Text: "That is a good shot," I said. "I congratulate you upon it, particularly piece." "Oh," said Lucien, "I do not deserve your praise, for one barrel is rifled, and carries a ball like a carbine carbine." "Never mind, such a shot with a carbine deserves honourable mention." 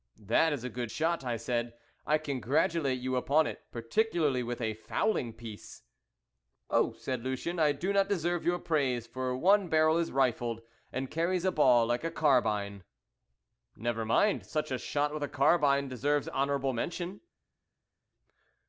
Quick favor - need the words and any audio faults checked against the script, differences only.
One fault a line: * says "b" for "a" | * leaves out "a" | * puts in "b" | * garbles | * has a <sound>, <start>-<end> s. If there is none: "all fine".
* puts in "with a fowling"
* leaves out "carbine"